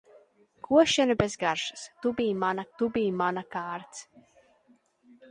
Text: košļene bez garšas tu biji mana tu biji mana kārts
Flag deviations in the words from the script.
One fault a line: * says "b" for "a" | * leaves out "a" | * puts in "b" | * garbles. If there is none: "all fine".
all fine